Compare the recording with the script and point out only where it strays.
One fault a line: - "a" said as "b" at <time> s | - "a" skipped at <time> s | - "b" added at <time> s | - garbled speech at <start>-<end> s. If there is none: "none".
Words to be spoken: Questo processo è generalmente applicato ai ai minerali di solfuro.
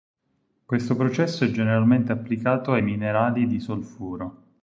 - "ai" skipped at 2.8 s